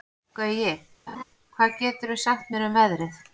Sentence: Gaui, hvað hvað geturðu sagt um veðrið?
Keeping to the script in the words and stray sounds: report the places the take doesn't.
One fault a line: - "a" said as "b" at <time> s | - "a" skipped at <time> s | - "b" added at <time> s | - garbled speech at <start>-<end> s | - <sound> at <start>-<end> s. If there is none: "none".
- laugh at 1.1-1.2 s
- "hvað" skipped at 1.8 s
- "mér" added at 2.5 s